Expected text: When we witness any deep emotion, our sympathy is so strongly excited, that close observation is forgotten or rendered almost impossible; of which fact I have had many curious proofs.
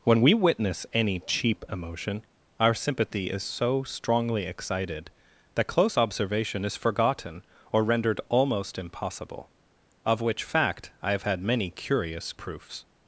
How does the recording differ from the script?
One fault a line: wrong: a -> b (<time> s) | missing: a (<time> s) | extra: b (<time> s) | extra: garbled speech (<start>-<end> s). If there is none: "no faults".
wrong: deep -> cheap (1.2 s)